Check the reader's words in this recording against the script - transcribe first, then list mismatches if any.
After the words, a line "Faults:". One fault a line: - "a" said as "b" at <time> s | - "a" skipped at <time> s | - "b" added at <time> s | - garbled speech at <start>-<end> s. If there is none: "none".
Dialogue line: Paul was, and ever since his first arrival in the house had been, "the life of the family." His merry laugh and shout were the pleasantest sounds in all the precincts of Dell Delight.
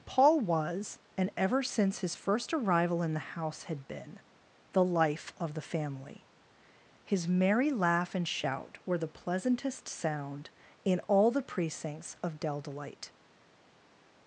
Paul was, and ever since his first arrival in the house had been, "the life of the family." His merry laugh and shout were the pleasantest sound in all the precincts of Dell Delight.
Faults:
- "sounds" said as "sound" at 9.9 s